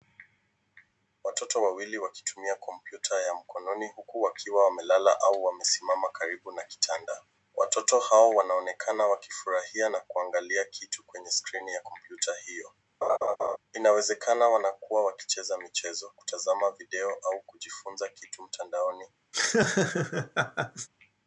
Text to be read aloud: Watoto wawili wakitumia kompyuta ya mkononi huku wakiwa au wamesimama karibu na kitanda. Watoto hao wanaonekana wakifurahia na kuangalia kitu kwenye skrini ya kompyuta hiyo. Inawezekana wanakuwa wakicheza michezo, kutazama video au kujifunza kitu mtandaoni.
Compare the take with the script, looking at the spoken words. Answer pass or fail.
fail